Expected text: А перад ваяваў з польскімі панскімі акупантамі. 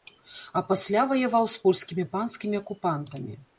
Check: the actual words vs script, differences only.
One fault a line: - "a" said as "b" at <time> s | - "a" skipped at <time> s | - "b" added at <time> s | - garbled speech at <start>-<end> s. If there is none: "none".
- "перад" said as "пасля" at 0.7 s